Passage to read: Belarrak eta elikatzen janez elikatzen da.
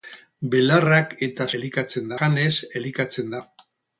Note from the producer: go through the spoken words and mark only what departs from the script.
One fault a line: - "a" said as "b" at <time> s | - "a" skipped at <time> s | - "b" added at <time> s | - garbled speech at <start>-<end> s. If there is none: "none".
none